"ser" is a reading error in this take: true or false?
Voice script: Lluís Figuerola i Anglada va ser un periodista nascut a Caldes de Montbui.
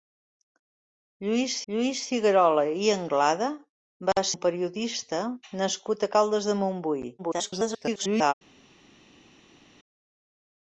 true